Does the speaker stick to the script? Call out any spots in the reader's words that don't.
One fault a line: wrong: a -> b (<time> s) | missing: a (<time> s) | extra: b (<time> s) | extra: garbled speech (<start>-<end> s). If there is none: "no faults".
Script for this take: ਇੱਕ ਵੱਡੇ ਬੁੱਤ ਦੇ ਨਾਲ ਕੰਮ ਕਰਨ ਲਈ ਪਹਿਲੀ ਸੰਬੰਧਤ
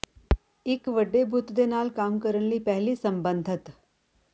no faults